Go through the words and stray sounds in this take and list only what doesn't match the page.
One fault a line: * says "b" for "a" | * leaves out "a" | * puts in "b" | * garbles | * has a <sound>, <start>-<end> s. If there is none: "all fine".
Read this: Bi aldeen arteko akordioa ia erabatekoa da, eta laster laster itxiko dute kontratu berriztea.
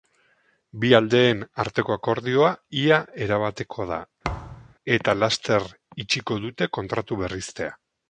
* has a thud, 4.2-4.7 s
* leaves out "laster"